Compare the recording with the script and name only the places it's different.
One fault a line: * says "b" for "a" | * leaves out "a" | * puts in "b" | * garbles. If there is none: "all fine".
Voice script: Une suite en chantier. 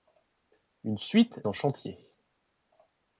all fine